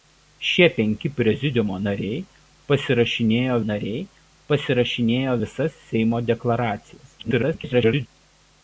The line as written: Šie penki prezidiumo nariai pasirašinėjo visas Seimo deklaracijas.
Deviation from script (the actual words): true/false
true